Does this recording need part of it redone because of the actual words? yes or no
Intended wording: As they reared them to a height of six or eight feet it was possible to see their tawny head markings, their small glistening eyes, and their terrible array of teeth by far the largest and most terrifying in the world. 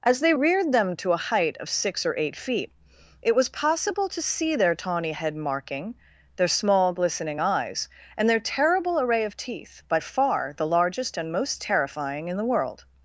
yes